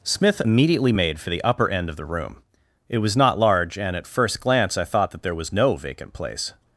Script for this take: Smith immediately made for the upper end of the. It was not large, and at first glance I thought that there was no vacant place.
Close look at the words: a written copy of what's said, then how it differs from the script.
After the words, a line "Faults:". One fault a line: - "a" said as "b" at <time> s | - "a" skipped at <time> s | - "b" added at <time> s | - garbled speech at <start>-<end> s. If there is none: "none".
Smith immediately made for the upper end of the room. It was not large, and at first glance I thought that there was no vacant place.
Faults:
- "room" added at 2.1 s